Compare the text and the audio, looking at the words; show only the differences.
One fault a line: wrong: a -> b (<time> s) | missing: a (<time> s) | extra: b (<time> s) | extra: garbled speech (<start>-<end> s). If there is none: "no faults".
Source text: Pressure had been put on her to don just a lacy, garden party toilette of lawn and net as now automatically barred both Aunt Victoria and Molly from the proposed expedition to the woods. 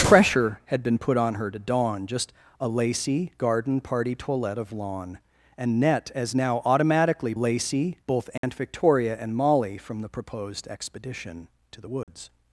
wrong: barred -> lacy (7.3 s)